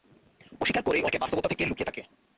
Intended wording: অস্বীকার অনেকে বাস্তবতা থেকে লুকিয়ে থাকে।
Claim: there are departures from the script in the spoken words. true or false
true